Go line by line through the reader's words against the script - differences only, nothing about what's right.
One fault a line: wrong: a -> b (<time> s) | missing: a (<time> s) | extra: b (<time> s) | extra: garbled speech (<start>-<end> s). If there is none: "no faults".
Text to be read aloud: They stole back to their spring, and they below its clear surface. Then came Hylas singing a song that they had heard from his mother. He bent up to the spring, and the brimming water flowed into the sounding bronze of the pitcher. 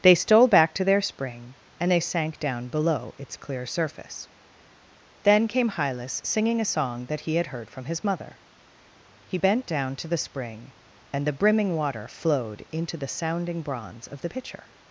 extra: sank down (2.0 s)
wrong: they -> he (7.2 s)
wrong: up -> down (9.7 s)